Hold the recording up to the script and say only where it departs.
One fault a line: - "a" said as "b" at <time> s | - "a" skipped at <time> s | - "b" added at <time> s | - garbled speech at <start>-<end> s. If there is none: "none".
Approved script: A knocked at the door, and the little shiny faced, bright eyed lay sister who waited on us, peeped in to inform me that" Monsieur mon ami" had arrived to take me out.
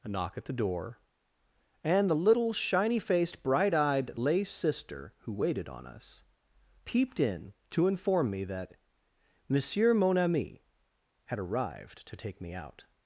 - "knocked" said as "knock" at 0.1 s